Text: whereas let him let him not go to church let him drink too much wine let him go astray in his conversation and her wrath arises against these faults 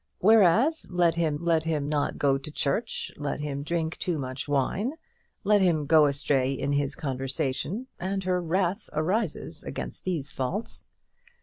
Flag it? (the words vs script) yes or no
no